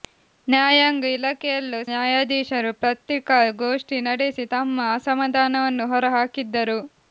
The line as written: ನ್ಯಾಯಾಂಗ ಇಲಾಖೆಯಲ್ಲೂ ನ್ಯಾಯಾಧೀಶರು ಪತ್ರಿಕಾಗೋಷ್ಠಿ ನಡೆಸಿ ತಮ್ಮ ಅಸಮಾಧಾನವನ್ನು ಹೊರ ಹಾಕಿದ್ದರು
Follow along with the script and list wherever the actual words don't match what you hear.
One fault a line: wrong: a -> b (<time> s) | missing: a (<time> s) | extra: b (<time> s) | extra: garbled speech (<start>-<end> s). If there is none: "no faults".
no faults